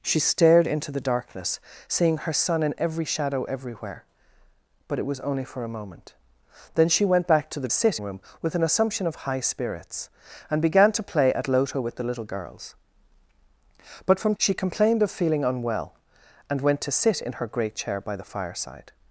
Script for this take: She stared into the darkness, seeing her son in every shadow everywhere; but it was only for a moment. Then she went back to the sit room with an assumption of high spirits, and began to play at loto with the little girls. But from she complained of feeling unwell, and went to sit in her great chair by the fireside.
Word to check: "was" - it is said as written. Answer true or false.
true